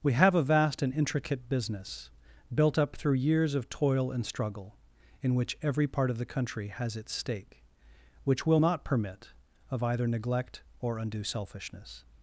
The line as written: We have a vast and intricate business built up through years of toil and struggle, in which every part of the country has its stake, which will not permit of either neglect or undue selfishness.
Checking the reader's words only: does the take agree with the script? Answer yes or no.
yes